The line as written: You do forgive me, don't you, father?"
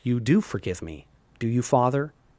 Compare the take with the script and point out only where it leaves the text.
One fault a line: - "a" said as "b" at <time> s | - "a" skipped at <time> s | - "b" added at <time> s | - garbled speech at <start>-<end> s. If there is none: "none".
- "don't" said as "do" at 1.4 s